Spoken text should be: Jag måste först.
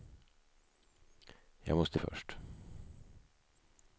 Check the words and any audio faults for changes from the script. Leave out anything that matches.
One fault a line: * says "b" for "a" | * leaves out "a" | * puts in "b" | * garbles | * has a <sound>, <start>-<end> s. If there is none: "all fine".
all fine